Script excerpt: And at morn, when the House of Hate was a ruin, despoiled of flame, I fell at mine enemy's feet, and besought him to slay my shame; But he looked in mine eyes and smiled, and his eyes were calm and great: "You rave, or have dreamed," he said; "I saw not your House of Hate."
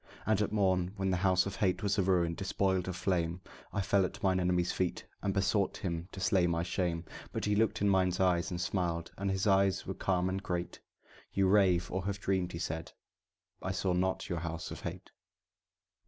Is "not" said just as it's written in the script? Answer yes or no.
yes